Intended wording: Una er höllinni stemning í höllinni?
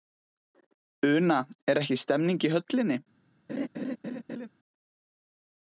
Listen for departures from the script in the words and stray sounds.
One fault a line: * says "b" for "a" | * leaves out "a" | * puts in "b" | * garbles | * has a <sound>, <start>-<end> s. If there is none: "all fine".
* says "ekki" for "höllinni"
* has a laugh, 3.5-4.5 s